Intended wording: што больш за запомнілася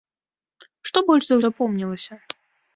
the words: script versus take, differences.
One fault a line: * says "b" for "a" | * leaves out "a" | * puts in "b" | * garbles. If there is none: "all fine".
all fine